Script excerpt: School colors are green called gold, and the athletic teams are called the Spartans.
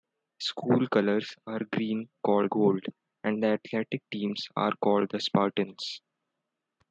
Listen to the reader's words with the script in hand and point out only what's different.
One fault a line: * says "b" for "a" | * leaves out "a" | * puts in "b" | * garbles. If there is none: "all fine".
all fine